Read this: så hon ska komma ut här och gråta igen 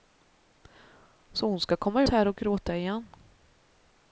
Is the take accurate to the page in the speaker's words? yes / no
no